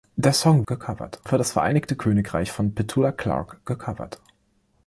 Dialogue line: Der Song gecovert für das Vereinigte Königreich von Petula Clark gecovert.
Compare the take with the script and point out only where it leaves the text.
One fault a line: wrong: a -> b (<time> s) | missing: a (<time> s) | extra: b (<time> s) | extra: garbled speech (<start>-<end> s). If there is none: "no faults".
no faults